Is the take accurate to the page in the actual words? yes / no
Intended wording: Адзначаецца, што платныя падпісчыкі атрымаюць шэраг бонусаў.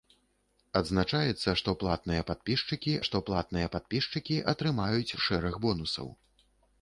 no